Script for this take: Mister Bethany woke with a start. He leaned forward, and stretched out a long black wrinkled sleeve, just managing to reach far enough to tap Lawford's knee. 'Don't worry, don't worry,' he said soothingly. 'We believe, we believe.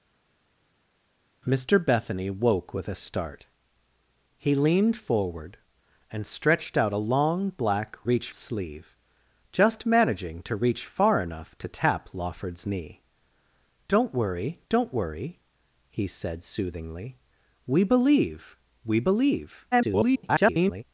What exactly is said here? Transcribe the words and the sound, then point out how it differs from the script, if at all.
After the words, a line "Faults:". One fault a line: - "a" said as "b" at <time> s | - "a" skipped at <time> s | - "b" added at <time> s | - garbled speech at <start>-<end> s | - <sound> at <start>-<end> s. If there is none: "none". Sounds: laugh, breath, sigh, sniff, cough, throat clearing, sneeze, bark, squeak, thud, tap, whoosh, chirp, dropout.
Mister Bethany woke with a start. He leaned forward, and stretched out a long black reach sleeve, just managing to reach far enough to tap Lawford's knee. 'Don't worry, don't worry,' he said soothingly. 'We believe, we believe. [garbled]
Faults:
- "wrinkled" said as "reach" at 8.0 s
- garbled speech at 19.7-20.8 s